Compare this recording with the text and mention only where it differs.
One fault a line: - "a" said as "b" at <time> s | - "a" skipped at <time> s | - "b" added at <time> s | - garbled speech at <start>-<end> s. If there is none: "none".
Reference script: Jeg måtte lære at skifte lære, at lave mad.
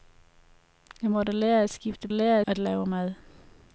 none